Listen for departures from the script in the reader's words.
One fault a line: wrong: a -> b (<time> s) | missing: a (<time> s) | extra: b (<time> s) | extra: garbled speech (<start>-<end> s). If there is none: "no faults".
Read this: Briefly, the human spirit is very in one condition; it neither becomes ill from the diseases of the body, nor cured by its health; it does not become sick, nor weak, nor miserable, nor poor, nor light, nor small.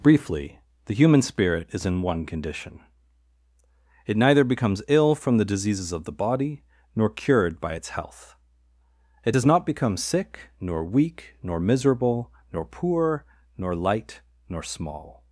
missing: very (1.9 s)